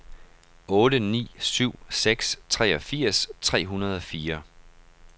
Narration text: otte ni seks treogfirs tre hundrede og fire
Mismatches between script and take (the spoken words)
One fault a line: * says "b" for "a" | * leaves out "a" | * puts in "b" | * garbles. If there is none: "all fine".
* puts in "syv"